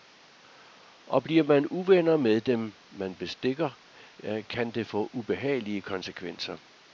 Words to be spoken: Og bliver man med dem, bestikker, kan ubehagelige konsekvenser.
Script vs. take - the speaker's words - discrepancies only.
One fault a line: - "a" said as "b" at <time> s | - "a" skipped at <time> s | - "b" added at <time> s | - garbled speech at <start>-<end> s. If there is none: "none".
- "uvenner" added at 1.7 s
- "man" added at 2.9 s
- "det få" added at 4.7 s